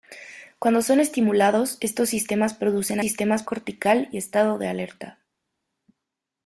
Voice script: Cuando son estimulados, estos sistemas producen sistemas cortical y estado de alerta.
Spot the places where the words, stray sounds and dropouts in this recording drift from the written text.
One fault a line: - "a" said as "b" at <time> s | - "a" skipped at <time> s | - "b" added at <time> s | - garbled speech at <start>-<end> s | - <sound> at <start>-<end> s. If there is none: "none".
none